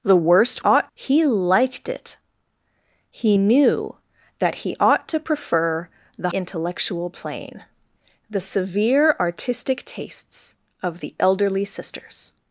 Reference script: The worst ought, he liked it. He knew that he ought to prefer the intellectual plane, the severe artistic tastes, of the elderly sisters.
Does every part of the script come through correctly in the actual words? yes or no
yes